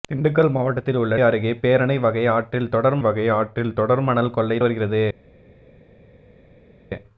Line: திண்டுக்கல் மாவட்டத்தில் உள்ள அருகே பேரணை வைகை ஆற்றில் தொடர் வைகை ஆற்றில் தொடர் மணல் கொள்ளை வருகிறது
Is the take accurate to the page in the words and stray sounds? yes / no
yes